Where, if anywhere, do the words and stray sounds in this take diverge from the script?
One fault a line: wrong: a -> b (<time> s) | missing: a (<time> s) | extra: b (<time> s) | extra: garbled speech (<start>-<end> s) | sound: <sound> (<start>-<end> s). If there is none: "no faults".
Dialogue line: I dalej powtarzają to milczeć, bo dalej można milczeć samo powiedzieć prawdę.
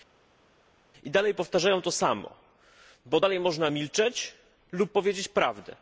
wrong: milczeć -> samo (1.9 s)
wrong: samo -> lub (4.7 s)